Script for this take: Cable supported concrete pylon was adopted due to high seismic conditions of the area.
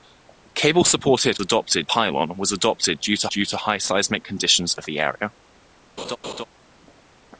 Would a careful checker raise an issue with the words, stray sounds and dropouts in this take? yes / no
yes